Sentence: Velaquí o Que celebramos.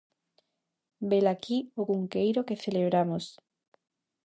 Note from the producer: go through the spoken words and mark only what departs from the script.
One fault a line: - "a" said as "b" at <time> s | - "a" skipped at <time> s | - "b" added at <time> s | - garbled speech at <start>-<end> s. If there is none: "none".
- "Cunqueiro" added at 1.9 s